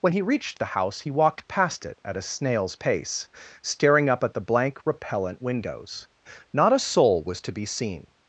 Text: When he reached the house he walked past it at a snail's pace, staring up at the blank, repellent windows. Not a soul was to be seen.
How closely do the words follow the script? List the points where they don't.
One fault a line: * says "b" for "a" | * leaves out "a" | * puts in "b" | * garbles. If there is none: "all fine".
all fine